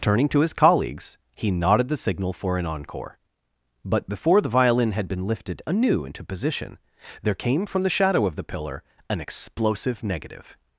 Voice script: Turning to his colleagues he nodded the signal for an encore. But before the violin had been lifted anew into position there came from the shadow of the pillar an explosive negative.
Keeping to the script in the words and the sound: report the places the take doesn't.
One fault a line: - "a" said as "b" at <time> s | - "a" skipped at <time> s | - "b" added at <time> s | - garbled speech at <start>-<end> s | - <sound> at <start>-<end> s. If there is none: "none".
none